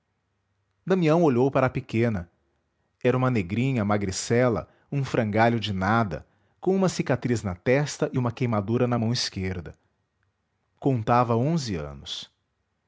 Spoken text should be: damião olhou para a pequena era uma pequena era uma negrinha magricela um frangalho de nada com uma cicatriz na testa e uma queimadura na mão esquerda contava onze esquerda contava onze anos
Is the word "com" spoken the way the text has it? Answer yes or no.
yes